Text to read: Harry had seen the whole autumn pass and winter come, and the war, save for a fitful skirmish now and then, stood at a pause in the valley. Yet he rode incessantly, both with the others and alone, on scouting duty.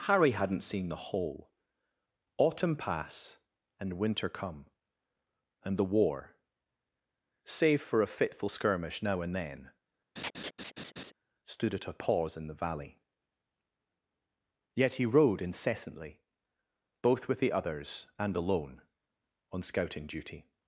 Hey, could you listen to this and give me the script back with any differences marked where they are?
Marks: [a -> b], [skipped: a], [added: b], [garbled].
Harry [had -> hadn't] seen the whole autumn pass and winter come, and the war, save for a fitful skirmish now and then, stood at a pause in the valley. Yet he rode incessantly, both with the others and alone, on scouting duty.